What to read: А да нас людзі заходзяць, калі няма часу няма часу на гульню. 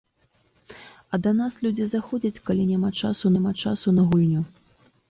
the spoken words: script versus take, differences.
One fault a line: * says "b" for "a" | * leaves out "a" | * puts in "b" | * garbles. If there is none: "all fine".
all fine